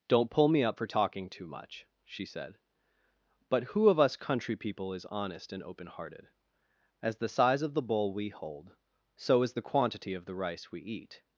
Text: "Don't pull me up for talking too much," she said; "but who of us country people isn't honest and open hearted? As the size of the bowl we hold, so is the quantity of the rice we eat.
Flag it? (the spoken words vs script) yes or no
yes